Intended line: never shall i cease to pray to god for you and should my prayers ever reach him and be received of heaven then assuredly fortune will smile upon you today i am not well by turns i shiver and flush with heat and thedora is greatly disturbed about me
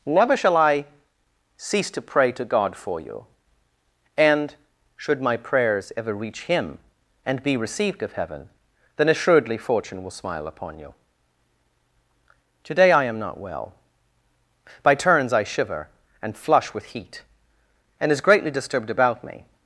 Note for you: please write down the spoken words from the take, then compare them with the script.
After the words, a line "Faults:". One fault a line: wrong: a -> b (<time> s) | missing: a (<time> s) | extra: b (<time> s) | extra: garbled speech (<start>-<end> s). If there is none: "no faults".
never shall i cease to pray to god for you and should my prayers ever reach him and be received of heaven then assuredly fortune will smile upon you today i am not well by turns i shiver and flush with heat and is greatly disturbed about me
Faults:
missing: thedora (18.1 s)